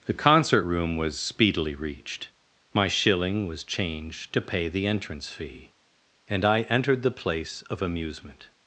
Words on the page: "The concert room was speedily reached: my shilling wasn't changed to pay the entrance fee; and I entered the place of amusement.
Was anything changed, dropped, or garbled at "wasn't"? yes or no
yes